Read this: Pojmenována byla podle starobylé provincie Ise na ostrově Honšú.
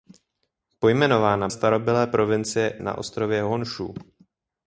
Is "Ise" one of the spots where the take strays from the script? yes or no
yes